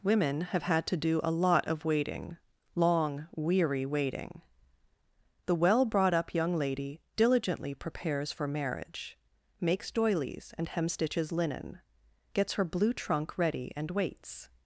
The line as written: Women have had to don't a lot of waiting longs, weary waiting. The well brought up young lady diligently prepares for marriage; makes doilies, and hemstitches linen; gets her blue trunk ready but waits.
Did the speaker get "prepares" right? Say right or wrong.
right